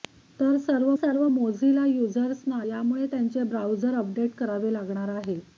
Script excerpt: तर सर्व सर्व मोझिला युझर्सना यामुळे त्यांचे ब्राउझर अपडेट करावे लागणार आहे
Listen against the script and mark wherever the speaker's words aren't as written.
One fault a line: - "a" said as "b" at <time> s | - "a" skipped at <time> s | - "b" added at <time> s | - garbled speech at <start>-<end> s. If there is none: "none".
none